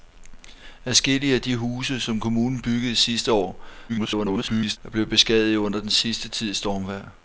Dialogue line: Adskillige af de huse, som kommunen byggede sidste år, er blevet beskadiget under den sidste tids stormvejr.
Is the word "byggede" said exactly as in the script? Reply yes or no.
yes